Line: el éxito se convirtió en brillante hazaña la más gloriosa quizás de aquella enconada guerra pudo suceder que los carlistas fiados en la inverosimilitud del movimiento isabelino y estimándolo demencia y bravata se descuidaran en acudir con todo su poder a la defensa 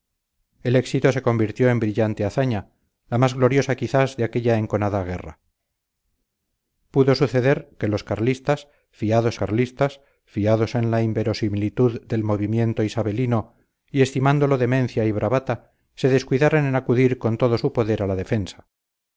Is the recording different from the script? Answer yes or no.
yes